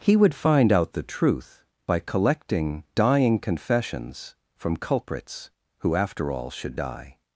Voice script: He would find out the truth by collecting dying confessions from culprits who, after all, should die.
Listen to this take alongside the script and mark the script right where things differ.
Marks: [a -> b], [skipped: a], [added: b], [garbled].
He would find out the truth by collecting dying confessions from culprits who, after all, should die.